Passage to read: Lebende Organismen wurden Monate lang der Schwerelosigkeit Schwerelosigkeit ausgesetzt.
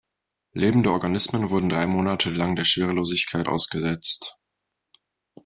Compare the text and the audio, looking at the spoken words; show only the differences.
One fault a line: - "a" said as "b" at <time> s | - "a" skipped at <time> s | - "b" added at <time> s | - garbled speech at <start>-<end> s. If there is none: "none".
- "drei" added at 1.7 s
- "Schwerelosigkeit" skipped at 3.5 s